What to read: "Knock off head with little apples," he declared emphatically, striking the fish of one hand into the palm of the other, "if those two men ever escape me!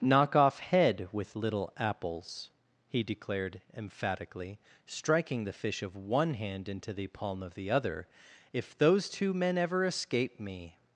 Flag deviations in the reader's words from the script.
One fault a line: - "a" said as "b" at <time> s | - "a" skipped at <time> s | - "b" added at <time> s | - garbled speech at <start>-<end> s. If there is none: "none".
none